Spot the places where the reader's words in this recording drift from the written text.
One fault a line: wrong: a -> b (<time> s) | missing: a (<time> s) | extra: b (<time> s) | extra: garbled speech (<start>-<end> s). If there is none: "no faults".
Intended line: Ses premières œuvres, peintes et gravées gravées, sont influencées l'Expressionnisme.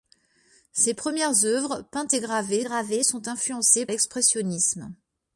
no faults